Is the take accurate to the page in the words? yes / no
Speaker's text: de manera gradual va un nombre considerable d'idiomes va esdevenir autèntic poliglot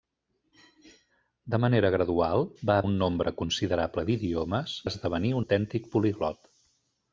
yes